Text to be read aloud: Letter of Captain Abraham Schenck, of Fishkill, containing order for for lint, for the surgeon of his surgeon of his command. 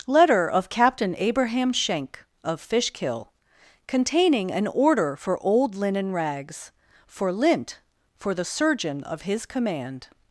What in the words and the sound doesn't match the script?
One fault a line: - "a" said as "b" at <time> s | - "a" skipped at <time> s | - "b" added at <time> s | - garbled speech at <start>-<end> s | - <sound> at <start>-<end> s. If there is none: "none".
- "an" added at 4.5 s
- "old linen rags" added at 5.4 s
- "surgeon of his" skipped at 9.5 s